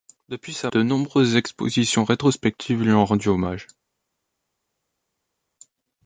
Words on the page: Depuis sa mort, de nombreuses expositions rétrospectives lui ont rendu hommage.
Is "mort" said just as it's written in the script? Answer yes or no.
no